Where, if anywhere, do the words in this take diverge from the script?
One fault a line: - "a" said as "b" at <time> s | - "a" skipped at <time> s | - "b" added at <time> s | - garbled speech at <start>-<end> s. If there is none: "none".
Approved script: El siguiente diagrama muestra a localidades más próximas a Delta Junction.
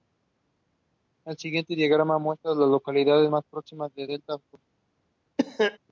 - "las" added at 2.5 s